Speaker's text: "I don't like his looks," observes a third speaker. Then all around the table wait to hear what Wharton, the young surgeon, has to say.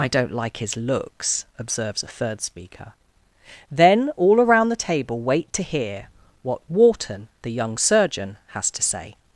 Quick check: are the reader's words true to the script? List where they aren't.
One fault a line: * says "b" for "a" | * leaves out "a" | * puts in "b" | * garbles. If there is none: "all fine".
all fine